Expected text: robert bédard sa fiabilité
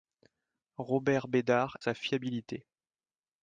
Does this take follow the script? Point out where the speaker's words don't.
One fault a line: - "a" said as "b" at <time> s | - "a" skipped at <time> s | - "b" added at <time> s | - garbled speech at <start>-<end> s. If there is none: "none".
none